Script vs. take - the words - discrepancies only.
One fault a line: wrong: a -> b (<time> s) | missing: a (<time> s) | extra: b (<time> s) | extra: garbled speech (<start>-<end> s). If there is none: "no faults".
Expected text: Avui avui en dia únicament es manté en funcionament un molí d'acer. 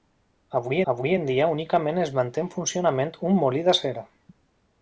no faults